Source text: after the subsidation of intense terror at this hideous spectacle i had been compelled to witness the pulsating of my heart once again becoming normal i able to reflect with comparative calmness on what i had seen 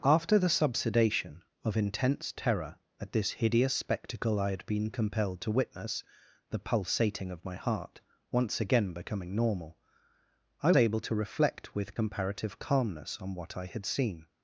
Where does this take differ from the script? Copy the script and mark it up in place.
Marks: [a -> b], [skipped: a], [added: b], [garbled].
after the subsidation of intense terror at this hideous spectacle i had been compelled to witness the pulsating of my heart once again becoming normal i able to reflect with comparative calmness on what i had seen